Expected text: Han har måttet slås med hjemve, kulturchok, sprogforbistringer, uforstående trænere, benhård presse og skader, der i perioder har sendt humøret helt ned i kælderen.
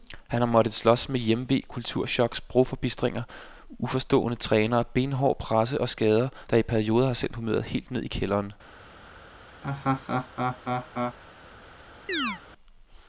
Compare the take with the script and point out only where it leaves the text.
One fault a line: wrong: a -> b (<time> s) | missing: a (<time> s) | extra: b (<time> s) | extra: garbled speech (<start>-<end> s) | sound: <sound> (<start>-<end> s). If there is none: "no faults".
sound: laugh (9.6-11.2 s)
sound: chirp (12.1-12.4 s)